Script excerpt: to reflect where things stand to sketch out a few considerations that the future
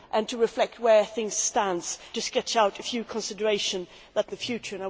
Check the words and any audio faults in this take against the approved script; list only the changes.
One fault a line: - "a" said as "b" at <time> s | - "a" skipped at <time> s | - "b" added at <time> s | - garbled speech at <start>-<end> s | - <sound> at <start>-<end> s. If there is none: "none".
none